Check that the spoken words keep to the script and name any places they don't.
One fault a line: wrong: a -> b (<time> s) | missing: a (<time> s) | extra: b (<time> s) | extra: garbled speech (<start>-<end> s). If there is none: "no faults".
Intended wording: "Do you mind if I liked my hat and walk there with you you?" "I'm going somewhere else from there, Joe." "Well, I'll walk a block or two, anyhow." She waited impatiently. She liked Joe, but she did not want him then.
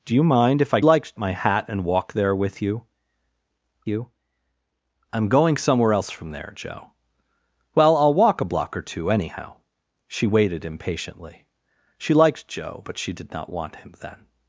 no faults